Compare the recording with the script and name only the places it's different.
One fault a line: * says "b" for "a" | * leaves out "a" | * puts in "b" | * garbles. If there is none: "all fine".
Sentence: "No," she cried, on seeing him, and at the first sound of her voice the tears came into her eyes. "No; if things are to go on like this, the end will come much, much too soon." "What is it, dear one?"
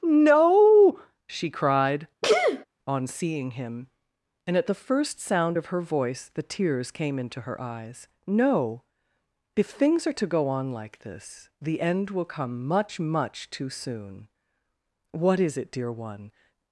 all fine